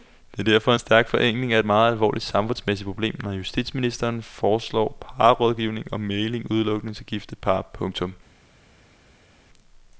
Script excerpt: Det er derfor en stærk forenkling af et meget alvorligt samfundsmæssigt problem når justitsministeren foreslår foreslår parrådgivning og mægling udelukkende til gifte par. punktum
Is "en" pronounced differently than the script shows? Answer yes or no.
no